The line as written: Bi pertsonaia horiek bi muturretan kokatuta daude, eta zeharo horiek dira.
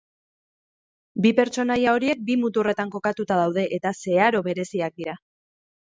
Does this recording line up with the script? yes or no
no